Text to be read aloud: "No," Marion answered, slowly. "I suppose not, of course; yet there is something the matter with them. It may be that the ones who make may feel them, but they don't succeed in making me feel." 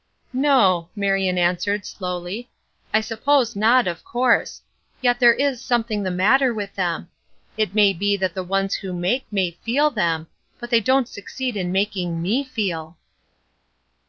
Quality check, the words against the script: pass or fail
pass